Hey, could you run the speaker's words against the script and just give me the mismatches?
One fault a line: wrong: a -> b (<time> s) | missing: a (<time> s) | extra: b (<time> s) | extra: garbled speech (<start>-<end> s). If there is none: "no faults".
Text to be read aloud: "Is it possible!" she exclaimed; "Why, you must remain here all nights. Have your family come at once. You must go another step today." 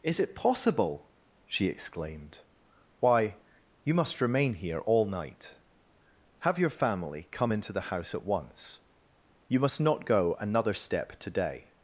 wrong: nights -> night (5.0 s)
extra: into the house (7.5 s)
extra: not (9.8 s)